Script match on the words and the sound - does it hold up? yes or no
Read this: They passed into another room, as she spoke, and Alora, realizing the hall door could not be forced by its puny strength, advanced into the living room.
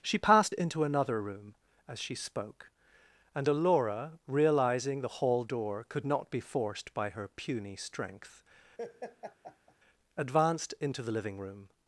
no